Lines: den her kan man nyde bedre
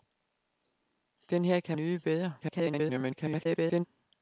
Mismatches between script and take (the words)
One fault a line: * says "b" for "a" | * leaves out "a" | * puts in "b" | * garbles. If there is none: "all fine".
* leaves out "man"
* garbles